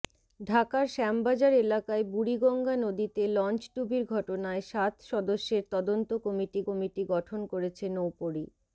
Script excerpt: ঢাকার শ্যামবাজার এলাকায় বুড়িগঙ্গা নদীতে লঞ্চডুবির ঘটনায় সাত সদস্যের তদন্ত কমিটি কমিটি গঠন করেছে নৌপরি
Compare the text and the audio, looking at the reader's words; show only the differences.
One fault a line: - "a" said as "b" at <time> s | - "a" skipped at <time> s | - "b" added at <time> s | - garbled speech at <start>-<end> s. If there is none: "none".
none